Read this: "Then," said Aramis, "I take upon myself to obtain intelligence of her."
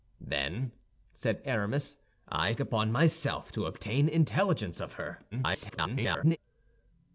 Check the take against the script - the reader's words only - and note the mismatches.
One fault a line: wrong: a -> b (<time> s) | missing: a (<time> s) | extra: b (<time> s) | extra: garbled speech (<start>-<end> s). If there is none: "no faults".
missing: take (2.5 s)
extra: garbled speech (5.3-6.4 s)